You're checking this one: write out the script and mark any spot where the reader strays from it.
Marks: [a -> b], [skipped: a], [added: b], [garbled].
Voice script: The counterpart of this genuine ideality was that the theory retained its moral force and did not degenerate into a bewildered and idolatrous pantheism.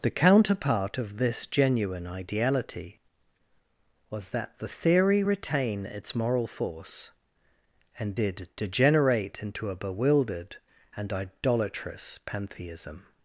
The counterpart of this genuine ideality was that the theory [retained -> retain] its moral force and did [skipped: not] degenerate into a bewildered and idolatrous pantheism.